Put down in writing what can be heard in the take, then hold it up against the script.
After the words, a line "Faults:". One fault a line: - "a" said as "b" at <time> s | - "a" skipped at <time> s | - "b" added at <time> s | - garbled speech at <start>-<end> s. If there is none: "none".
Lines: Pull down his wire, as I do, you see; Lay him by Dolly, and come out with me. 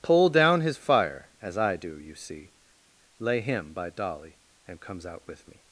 Pull down his fire, as I do, you see; Lay him by Dolly, and comes out with me.
Faults:
- "wire" said as "fire" at 0.8 s
- "come" said as "comes" at 4.8 s